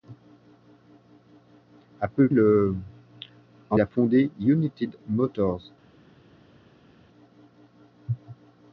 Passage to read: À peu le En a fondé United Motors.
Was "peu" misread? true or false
false